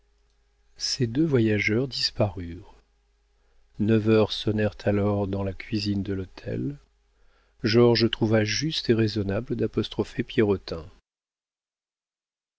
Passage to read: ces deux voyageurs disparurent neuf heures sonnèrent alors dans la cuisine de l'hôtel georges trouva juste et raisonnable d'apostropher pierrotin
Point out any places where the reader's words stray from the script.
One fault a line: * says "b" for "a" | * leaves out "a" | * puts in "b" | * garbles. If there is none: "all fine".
all fine